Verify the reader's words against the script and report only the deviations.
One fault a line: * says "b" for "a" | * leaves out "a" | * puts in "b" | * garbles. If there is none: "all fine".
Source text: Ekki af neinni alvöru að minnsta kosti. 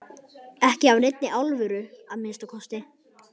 all fine